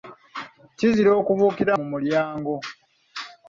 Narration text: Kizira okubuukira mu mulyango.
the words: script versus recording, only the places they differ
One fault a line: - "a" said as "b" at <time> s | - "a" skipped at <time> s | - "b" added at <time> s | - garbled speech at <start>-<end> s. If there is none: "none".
none